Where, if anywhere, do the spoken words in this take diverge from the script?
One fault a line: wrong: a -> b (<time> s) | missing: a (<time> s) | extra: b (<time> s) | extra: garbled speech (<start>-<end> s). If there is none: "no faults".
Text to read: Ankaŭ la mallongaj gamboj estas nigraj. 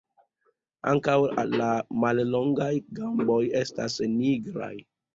no faults